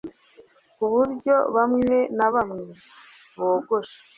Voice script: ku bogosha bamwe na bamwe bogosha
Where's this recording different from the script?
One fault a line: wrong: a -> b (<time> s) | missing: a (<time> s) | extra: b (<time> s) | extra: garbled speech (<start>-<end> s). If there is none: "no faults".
wrong: bogosha -> buryo (0.9 s)